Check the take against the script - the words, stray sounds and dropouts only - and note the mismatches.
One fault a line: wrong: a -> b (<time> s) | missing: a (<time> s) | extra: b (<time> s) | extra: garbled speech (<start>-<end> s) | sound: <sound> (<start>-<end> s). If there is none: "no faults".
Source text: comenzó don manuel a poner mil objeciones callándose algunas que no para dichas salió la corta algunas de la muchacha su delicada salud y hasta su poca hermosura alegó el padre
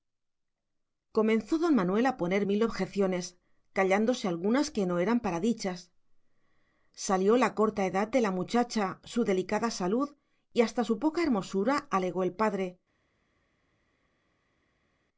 extra: eran (5.0 s)
wrong: algunas -> edad (7.8 s)